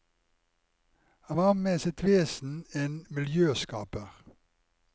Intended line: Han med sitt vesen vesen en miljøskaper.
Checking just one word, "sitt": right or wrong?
right